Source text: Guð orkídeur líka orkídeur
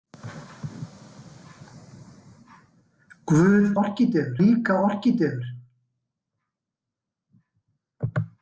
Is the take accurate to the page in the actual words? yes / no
yes